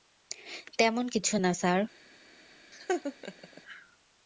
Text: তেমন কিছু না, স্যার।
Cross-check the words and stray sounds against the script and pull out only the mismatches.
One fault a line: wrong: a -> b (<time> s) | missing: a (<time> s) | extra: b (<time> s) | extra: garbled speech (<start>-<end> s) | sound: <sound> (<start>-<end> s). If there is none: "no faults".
sound: laugh (2.7-3.6 s)